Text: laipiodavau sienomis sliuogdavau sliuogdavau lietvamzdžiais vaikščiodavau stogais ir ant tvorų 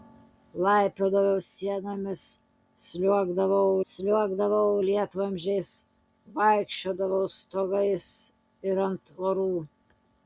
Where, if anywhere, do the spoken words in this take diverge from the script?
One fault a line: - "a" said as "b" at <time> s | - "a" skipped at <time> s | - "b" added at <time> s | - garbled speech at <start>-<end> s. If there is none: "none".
none